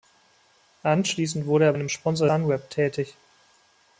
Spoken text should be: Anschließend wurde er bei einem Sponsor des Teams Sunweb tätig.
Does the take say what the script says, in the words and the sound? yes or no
no